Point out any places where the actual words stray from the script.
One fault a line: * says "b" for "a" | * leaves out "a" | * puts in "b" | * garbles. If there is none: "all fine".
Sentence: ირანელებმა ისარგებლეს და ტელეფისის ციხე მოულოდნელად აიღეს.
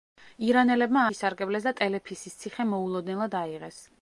all fine